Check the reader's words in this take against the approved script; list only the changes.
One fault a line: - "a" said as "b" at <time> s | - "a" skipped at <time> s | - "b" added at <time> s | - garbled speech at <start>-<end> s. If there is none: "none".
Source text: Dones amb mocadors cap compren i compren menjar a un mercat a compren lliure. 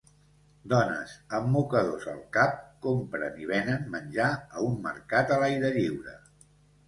- "al" added at 2.1 s
- "compren" said as "venen" at 3.5 s
- "compren" said as "l'aire" at 5.5 s